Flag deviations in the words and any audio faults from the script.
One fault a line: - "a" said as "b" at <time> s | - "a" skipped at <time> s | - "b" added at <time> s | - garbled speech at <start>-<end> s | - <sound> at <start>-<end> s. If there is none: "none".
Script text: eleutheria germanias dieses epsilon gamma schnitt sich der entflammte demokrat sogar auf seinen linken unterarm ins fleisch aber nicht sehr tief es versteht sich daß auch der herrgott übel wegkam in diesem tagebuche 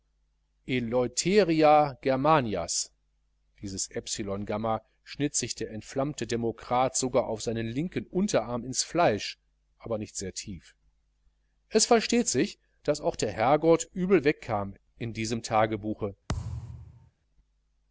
- thud at 16.3-17.1 s